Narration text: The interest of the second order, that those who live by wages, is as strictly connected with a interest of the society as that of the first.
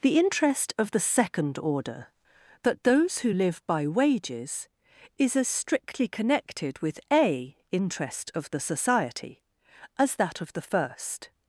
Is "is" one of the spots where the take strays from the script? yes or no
no